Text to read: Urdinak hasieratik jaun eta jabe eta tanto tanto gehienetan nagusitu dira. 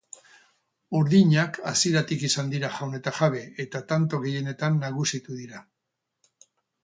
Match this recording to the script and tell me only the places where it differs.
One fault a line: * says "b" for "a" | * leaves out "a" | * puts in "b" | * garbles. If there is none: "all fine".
* puts in "izan dira"
* leaves out "tanto"